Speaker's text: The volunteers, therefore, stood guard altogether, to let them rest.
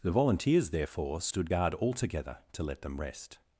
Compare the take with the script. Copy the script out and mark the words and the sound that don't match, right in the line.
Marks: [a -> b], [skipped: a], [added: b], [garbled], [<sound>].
The volunteers, therefore, stood guard altogether, to let them rest.